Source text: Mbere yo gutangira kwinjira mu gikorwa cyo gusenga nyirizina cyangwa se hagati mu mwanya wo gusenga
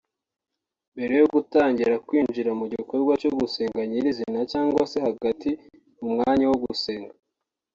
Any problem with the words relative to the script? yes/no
no